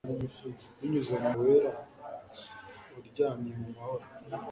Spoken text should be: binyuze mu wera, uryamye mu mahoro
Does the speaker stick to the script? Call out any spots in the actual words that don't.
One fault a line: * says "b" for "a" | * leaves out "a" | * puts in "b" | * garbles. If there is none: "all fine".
all fine